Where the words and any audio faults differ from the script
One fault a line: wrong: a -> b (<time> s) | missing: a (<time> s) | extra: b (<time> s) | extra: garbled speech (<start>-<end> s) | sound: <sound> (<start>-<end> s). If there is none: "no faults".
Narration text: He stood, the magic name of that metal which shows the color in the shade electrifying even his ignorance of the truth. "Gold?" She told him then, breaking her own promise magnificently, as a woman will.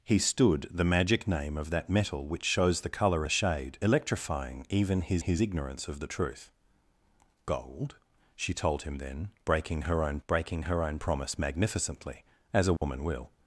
missing: in (3.2 s)
extra: his (5.2 s)
extra: breaking her own (10.3 s)
sound: dropout (12.8-12.8 s)